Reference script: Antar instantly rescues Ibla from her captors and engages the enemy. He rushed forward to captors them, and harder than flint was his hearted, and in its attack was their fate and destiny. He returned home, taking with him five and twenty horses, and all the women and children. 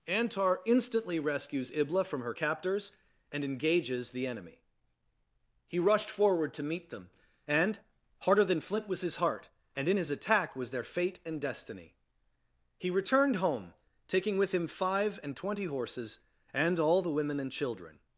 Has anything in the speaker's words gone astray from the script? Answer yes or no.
yes